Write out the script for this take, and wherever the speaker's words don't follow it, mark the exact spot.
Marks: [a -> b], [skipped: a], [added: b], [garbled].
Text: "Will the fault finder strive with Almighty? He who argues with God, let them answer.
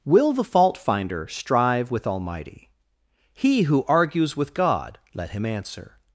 "Will the fault finder strive with Almighty? He who argues with God, let [them -> him] answer.